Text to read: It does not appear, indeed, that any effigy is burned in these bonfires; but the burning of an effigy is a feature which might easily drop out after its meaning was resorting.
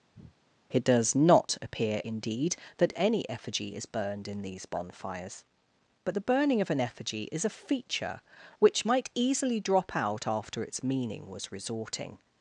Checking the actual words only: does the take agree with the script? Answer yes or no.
yes